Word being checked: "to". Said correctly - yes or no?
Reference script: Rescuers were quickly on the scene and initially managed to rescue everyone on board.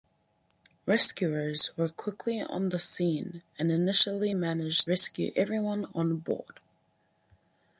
no